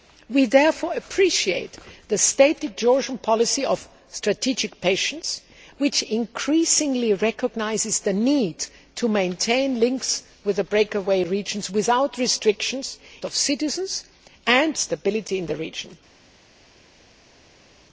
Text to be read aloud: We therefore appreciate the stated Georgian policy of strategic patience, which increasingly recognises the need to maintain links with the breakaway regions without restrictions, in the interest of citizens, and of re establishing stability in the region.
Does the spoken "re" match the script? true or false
false